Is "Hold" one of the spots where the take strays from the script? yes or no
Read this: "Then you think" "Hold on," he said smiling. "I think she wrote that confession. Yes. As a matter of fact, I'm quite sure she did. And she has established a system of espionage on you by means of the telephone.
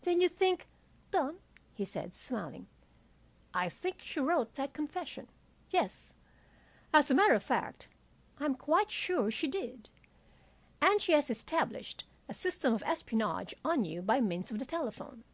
yes